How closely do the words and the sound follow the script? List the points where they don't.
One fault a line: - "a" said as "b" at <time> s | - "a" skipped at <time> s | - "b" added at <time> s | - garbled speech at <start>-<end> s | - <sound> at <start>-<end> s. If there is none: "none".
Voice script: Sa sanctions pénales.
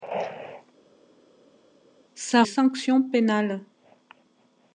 none